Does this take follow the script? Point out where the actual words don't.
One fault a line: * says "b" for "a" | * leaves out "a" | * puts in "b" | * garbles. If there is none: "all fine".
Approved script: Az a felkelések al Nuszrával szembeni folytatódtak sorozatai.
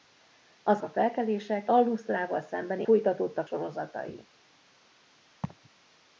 all fine